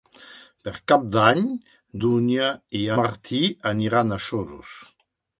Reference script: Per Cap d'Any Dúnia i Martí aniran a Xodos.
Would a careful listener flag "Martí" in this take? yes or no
no